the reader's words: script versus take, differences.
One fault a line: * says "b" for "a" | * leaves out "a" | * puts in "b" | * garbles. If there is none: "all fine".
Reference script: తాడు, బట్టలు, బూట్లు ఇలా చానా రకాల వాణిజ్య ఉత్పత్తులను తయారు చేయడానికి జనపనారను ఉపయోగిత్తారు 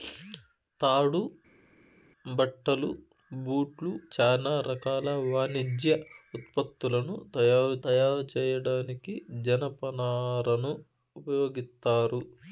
* leaves out "ఇలా"
* puts in "తయారు"